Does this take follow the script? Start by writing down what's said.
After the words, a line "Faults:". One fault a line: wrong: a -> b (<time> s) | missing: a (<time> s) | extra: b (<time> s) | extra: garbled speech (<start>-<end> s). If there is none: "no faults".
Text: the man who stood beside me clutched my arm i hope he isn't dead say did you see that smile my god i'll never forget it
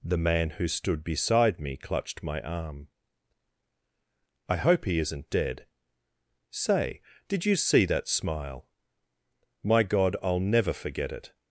the man who stood beside me clutched my arm i hope he isn't dead say did you see that smile my god i'll never forget it
Faults:
no faults